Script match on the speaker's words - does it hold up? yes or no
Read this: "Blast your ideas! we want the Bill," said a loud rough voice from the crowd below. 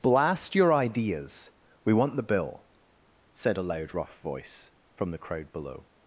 yes